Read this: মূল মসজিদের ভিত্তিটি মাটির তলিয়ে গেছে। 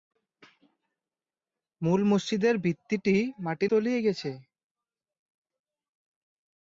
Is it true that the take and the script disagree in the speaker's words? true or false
false